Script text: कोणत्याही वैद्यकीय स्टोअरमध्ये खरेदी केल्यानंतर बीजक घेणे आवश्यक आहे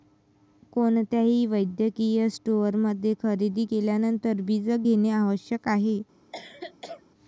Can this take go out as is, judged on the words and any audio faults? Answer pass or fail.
fail